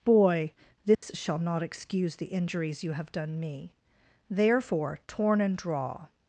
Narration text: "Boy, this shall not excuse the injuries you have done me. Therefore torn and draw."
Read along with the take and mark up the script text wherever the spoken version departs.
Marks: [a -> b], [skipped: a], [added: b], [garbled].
"Boy, this shall not excuse the injuries you have done me. Therefore torn and draw."